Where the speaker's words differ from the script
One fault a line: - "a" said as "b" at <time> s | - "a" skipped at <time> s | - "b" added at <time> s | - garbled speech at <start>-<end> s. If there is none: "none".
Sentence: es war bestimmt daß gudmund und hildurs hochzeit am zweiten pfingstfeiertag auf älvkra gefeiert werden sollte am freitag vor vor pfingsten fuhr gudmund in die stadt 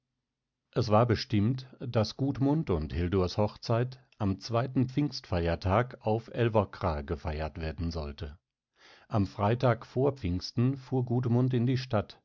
- "vor" skipped at 10.1 s